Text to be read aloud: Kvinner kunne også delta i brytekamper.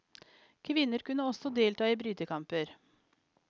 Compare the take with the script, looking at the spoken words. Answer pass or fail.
pass